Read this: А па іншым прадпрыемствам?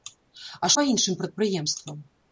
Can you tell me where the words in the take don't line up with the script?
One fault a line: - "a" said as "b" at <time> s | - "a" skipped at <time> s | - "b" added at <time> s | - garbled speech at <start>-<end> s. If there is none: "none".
none